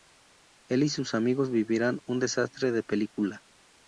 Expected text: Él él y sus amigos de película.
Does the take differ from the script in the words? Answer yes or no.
yes